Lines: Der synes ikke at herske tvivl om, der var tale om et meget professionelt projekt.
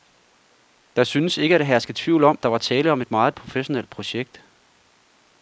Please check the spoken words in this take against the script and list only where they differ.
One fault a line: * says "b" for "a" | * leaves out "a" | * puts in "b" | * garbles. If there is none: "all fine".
all fine